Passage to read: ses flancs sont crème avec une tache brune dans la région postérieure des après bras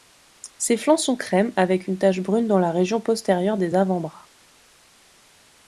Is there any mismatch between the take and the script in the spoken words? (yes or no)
yes